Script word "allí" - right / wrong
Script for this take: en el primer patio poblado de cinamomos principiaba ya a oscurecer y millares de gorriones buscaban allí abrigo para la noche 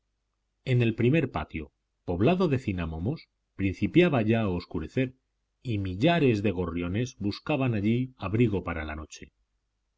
right